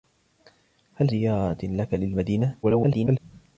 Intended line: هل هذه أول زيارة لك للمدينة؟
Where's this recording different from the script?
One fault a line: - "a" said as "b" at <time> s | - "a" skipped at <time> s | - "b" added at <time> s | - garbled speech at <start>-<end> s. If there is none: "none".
- "هذه أول" skipped at 1.1 s
- garbled speech at 2.6-3.2 s